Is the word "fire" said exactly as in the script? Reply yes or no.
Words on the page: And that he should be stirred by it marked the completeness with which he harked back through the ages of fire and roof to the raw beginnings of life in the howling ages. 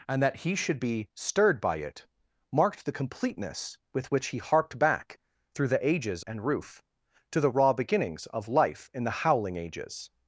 no